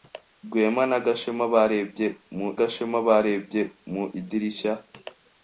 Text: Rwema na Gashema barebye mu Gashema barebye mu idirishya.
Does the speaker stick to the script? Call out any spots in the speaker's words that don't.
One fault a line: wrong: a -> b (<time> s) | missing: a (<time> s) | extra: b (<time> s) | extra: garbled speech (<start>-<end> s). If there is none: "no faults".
no faults